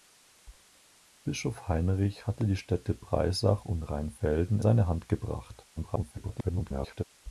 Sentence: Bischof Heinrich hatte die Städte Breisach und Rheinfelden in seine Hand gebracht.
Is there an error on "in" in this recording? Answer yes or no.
yes